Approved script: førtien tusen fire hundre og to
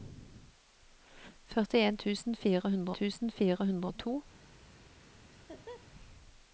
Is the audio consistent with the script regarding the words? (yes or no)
no